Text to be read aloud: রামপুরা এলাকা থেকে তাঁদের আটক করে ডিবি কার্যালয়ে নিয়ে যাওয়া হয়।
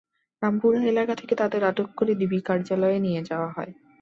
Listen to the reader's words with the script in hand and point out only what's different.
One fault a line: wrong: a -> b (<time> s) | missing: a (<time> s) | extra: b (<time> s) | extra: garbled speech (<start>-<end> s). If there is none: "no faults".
no faults